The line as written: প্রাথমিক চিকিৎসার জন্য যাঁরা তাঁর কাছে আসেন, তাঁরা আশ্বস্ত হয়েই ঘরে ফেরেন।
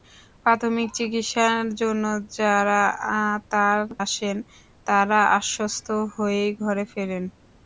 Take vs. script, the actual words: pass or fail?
fail